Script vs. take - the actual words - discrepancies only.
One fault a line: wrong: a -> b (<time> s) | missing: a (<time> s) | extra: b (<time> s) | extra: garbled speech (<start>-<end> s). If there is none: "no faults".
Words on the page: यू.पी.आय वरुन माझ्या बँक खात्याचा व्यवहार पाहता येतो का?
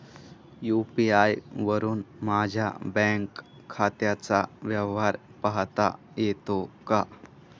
no faults